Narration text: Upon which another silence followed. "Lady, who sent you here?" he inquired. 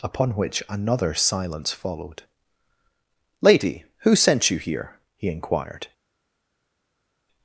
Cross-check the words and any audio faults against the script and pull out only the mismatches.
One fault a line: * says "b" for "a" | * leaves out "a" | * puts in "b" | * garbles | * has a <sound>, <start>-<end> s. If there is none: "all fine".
all fine